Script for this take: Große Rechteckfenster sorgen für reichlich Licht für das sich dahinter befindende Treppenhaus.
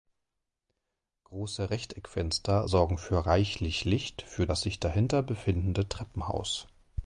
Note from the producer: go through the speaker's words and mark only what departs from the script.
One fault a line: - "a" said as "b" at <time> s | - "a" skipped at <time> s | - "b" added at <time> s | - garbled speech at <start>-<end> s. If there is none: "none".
none